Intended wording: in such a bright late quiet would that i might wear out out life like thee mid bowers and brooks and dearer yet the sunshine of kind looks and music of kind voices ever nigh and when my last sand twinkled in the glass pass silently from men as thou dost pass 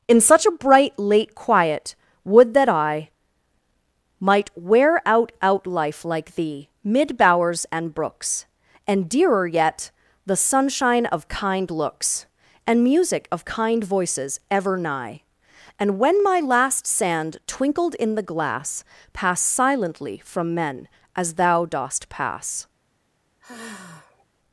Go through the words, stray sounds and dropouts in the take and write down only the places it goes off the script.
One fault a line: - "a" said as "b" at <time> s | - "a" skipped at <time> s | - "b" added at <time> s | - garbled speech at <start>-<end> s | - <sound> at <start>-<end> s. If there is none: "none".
- sigh at 23.4-24.3 s